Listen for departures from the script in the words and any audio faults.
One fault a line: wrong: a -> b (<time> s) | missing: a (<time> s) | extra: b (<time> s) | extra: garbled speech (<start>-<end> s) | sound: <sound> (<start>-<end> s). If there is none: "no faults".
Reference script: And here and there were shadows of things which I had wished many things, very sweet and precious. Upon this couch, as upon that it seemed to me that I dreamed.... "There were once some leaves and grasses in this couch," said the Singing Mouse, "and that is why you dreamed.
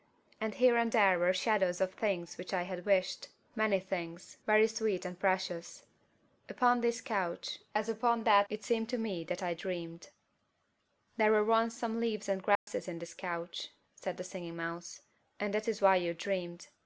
sound: dropout (12.6-12.7 s)